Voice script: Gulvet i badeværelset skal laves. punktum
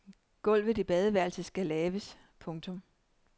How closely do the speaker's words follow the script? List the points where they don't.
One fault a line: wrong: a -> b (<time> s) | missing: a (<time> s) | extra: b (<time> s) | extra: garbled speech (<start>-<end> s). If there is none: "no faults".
no faults